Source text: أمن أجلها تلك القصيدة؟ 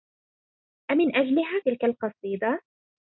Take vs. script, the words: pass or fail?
pass